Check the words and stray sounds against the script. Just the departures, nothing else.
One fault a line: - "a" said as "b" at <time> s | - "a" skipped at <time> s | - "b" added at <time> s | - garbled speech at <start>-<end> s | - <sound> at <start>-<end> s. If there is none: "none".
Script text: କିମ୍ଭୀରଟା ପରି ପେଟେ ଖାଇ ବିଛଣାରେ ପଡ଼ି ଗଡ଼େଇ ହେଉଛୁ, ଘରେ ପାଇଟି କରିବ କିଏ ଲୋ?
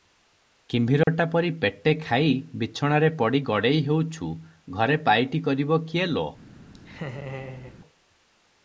- dropout at 1.0-1.1 s
- laugh at 6.7-7.8 s